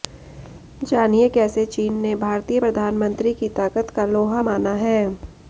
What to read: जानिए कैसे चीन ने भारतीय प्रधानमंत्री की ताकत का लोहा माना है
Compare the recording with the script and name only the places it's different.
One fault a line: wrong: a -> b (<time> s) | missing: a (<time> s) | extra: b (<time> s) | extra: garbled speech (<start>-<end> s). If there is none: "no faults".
no faults